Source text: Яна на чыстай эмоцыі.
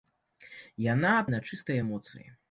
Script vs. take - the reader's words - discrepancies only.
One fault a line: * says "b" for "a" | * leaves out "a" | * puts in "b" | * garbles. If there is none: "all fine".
all fine